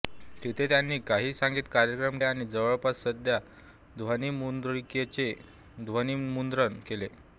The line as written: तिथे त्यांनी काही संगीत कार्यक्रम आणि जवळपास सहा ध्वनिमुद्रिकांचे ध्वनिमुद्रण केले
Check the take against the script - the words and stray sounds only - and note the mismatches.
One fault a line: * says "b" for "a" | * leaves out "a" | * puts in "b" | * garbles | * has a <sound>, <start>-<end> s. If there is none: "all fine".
all fine